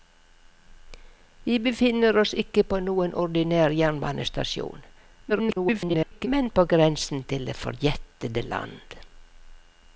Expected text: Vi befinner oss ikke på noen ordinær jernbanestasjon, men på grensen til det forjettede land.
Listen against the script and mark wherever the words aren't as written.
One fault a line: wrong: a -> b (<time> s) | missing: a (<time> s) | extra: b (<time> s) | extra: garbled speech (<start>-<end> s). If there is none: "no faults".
extra: garbled speech (5.3-6.3 s)